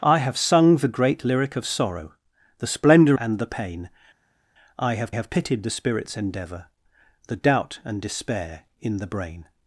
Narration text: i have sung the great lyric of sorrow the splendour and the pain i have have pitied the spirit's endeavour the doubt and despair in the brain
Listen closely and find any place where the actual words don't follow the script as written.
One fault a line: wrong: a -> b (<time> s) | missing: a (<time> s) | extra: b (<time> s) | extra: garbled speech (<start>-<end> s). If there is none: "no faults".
no faults